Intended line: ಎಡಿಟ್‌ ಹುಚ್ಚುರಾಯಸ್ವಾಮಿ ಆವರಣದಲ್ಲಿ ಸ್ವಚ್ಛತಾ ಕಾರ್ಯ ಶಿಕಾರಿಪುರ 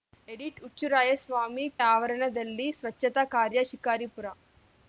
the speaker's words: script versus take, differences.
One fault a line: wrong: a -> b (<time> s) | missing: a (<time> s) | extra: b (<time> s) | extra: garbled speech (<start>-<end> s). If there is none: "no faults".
no faults